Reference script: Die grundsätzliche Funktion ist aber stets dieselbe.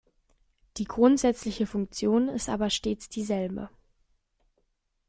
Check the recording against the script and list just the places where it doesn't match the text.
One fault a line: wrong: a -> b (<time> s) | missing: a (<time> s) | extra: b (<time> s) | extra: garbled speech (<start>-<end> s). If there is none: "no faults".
no faults